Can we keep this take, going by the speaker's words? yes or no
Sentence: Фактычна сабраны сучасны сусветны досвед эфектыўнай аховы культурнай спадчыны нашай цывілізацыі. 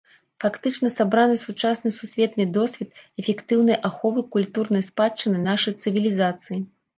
yes